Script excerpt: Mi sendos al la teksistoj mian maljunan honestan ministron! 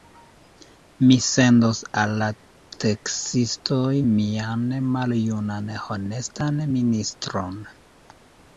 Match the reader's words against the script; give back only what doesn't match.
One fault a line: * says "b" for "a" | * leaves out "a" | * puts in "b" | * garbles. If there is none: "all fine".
all fine